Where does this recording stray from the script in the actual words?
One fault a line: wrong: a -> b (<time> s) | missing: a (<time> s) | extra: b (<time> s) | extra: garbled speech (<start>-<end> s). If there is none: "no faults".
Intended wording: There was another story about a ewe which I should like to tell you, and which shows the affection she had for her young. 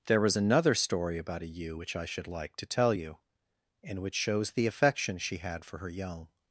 no faults